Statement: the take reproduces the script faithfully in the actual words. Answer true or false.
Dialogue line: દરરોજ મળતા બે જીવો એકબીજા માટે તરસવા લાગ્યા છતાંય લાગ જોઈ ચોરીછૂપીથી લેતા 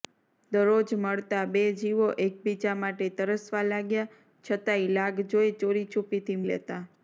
true